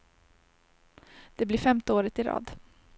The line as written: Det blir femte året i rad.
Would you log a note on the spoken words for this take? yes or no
no